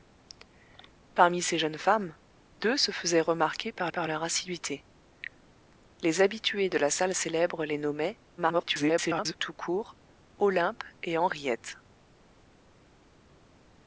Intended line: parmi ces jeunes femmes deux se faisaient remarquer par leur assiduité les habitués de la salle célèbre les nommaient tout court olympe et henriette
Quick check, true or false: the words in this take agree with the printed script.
false